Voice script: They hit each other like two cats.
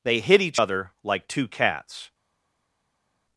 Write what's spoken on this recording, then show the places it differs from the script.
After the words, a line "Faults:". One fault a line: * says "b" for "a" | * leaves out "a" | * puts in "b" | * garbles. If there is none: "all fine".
They hit each other like two cats.
Faults:
all fine